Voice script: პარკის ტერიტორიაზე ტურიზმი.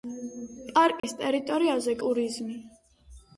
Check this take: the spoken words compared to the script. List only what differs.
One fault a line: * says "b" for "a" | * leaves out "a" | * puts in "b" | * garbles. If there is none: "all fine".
all fine